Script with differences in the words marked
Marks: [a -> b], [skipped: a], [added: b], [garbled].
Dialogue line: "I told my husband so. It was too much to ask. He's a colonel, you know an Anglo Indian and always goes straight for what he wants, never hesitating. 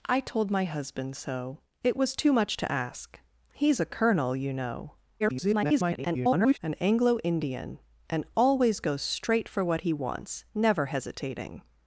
"I told my husband so. It was too much to ask. He's a colonel, you know [garbled] an Anglo Indian and always goes straight for what he wants, never hesitating.